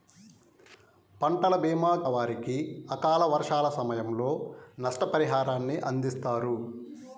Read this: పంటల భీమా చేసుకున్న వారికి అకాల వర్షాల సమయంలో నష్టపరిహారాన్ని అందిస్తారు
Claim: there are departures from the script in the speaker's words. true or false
true